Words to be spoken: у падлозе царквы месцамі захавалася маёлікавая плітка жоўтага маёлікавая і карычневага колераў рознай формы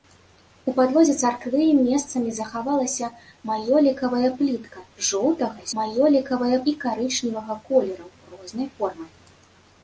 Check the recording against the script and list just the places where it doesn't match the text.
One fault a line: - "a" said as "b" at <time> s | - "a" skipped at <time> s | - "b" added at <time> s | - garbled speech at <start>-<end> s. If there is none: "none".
none